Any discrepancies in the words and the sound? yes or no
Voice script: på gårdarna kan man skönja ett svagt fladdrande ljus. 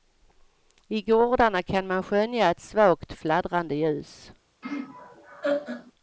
yes